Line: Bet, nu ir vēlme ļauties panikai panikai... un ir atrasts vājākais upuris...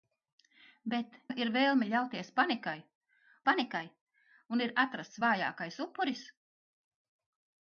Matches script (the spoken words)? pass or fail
pass